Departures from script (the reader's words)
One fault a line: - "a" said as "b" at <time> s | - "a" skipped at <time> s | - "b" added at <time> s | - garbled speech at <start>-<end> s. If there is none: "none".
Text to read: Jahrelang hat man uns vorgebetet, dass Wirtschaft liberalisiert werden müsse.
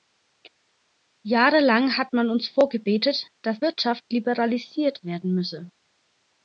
none